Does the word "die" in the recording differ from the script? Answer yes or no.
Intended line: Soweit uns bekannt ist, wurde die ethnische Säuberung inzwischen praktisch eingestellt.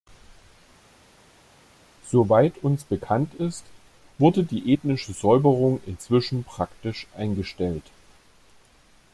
no